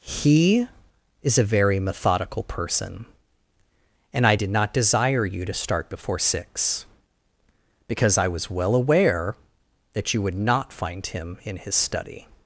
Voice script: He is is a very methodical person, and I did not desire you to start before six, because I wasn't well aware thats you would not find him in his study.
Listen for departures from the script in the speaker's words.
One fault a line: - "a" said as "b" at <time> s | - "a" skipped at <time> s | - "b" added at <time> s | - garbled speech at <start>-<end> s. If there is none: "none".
- "is" skipped at 1.4 s
- "wasn't" said as "was" at 8.3 s
- "thats" said as "that" at 9.9 s